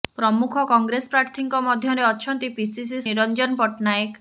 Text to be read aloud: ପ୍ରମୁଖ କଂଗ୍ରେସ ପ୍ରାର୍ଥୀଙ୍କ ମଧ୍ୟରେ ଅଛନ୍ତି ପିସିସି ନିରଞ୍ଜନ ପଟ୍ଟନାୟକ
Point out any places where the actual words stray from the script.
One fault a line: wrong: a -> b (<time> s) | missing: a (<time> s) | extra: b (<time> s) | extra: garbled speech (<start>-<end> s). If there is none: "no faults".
no faults